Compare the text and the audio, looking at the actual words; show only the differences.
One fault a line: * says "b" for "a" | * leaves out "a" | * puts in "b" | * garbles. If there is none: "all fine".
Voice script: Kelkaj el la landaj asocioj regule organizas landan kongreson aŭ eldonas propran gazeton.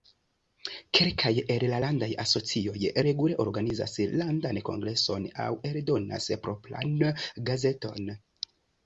all fine